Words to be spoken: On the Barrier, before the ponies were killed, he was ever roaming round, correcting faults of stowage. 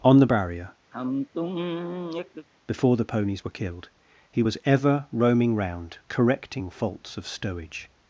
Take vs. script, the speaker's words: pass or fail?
pass